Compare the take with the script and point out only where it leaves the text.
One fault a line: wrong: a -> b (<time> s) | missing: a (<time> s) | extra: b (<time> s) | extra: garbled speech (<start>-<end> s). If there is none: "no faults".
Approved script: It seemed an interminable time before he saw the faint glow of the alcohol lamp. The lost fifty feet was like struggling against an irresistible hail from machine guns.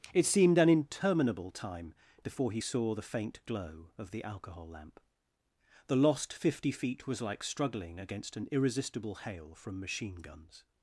no faults